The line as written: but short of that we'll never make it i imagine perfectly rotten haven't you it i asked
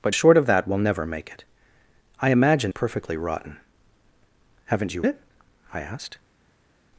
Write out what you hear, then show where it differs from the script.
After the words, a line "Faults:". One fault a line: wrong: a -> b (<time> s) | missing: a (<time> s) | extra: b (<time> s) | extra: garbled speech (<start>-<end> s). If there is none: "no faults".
but short of that we'll never make it i imagine perfectly rotten haven't you it i asked
Faults:
no faults